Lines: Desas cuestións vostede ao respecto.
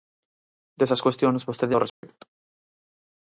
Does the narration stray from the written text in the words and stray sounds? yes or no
yes